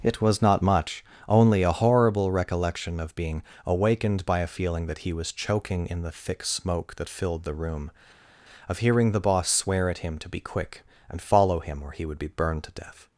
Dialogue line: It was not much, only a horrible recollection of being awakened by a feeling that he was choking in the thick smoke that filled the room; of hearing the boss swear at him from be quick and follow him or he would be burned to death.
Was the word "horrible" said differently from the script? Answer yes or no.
no